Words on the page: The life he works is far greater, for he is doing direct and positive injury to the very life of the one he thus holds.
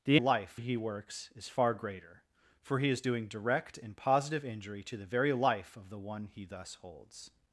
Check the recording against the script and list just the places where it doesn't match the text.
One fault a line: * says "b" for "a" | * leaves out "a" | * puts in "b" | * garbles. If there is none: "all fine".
all fine